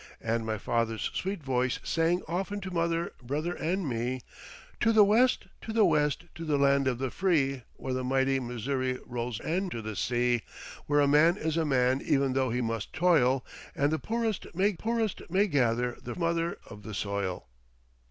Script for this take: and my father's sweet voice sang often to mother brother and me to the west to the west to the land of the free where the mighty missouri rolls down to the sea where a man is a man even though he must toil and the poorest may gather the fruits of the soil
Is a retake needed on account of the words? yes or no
yes